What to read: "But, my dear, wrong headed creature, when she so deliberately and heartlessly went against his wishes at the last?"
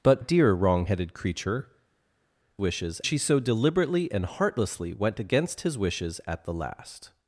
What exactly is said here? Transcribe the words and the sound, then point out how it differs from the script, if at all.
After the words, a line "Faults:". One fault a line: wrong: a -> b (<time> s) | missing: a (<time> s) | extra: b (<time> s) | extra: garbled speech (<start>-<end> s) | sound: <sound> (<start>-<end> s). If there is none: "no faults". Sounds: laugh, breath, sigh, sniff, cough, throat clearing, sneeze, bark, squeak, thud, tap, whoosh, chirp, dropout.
"But, dear, wrong headed creature, wishes she so deliberately and heartlessly went against his wishes at the last?"
Faults:
missing: my (0.2 s)
wrong: when -> wishes (2.6 s)